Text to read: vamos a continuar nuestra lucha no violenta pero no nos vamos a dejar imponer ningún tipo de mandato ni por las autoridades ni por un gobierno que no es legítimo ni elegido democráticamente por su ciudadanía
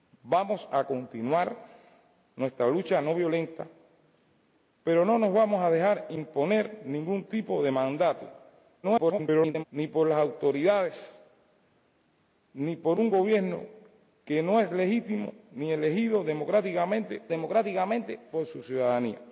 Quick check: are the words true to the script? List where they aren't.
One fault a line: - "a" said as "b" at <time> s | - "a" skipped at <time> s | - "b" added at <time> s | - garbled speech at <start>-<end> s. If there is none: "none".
- garbled speech at 8.8-9.6 s
- "democráticamente" added at 17.3 s